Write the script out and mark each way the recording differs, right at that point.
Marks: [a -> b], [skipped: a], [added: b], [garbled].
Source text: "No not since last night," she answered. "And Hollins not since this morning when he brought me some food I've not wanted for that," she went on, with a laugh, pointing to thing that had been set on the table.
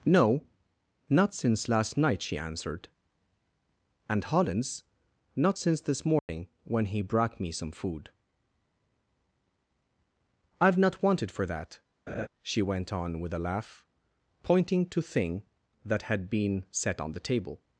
"No not since last night," she answered. "And Hollins not since this morning when he brought me some food I've not wanted for that," she went on, with a laugh, pointing to thing that had been set on the table.